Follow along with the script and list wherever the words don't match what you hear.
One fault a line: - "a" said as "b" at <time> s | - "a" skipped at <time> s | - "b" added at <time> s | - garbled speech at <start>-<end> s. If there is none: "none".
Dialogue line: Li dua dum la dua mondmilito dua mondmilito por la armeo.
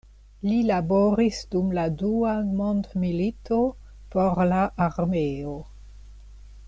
- "dua" said as "laboris" at 0.7 s
- "dua mondmilito" skipped at 3.6 s